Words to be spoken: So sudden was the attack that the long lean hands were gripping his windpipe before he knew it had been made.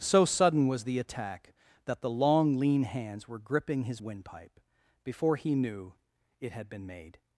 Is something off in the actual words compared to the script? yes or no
no